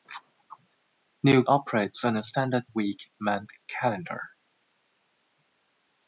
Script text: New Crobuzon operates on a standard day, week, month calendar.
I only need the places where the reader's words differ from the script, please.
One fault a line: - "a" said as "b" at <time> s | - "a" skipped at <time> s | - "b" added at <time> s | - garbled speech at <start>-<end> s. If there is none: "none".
- "Crobuzon" skipped at 1.4 s
- "day" skipped at 2.7 s